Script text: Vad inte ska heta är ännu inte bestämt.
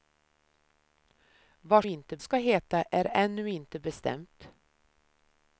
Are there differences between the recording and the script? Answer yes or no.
no